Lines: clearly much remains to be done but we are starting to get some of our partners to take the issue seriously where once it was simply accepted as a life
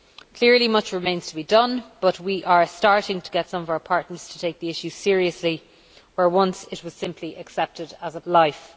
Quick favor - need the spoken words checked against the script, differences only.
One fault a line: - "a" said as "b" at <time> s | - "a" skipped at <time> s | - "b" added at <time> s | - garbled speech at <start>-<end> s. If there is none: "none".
none